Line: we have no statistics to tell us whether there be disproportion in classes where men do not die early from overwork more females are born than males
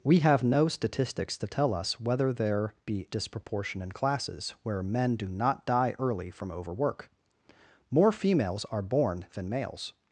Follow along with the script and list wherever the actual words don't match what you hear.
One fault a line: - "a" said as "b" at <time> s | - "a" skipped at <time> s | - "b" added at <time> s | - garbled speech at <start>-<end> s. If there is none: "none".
none